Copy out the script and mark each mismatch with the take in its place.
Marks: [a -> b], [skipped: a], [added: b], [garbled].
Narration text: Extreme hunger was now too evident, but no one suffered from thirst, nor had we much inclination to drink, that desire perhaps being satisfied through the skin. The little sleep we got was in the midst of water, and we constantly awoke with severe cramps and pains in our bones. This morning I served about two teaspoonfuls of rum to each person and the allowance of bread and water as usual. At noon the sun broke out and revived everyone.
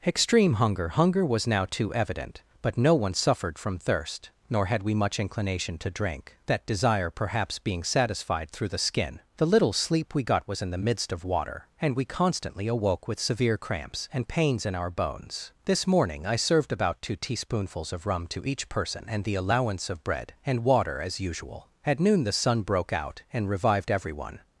Extreme hunger [added: hunger] was now too evident, but no one suffered from thirst, nor had we much inclination to drink, that desire perhaps being satisfied through the skin. The little sleep we got was in the midst of water, and we constantly awoke with severe cramps and pains in our bones. This morning I served about two teaspoonfuls of rum to each person and the allowance of bread and water as usual. At noon the sun broke out and revived everyone.